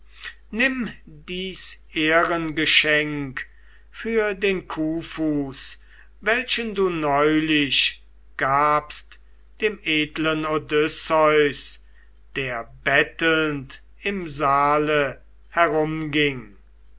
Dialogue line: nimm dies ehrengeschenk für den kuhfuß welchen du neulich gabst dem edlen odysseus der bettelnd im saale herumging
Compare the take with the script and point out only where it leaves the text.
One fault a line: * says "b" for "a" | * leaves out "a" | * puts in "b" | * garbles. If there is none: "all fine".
all fine